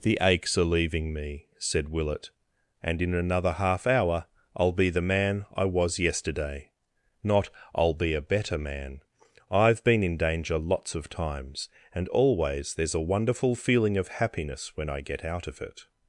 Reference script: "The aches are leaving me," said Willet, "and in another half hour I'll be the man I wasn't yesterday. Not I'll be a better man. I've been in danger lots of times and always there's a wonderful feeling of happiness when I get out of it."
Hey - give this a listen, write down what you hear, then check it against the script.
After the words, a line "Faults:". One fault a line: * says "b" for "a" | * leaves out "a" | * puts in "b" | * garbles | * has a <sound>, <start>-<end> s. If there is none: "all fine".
"The aches are leaving me," said Willet, "and in another half hour I'll be the man I was yesterday. Not I'll be a better man. I've been in danger lots of times and always there's a wonderful feeling of happiness when I get out of it."
Faults:
* says "was" for "wasn't"